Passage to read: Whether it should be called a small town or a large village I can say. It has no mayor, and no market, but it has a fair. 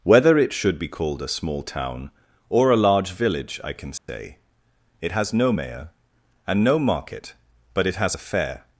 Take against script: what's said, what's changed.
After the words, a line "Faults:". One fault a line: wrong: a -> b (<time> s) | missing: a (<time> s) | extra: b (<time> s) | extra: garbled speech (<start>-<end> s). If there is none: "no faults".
Whether it should be called a small town or a large village I can say. It has no mayor, and no market, but it has a fair.
Faults:
no faults